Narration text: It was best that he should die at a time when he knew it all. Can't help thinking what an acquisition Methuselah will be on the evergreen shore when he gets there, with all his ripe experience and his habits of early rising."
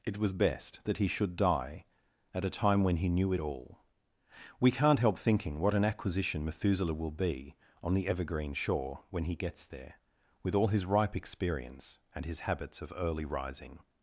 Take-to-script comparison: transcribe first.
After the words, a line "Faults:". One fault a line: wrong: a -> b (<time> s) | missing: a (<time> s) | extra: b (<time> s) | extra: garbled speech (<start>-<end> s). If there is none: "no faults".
It was best that he should die at a time when he knew it all. We can't help thinking what an acquisition Methuselah will be on the evergreen shore when he gets there, with all his ripe experience and his habits of early rising."
Faults:
extra: We (4.6 s)